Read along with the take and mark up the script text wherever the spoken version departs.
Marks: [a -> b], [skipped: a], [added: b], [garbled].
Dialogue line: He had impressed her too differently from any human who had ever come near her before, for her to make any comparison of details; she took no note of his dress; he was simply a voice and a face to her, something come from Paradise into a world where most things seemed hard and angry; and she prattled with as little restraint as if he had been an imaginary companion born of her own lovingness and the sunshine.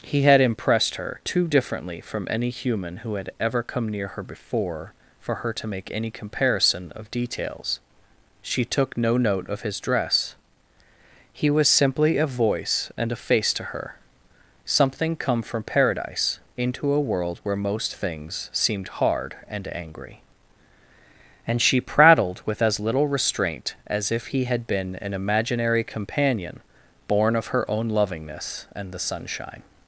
He had impressed her too differently from any human who had ever come near her before, for her to make any comparison of details; she took no note of his dress; he was simply a voice and a face to her, something come from Paradise into a world where most things seemed hard and angry; and she prattled with as little restraint as if he had been an imaginary companion born of her own lovingness and the sunshine.